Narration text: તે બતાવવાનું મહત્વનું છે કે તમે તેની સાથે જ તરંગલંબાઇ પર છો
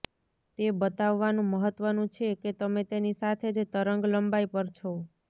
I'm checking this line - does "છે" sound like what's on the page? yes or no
yes